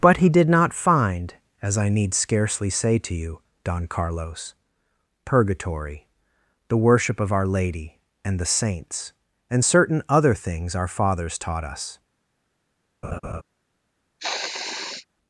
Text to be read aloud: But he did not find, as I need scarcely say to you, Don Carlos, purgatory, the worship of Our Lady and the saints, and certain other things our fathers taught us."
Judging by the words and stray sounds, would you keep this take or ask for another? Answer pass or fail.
fail